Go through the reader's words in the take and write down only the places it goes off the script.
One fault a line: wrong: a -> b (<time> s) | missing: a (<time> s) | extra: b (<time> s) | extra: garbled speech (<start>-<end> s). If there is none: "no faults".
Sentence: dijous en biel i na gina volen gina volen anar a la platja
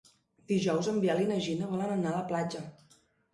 missing: gina volen (1.9 s)